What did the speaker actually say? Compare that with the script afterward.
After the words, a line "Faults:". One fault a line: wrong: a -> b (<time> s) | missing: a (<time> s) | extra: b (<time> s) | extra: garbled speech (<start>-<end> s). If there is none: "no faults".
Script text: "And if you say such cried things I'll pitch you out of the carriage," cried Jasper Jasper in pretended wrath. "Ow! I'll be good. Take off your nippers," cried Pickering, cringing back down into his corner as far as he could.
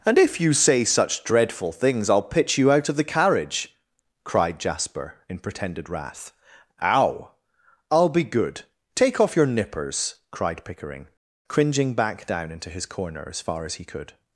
"And if you say such dreadful things I'll pitch you out of the carriage," cried Jasper in pretended wrath. "Ow! I'll be good. Take off your nippers," cried Pickering, cringing back down into his corner as far as he could.
Faults:
wrong: cried -> dreadful (1.2 s)
missing: Jasper (5.2 s)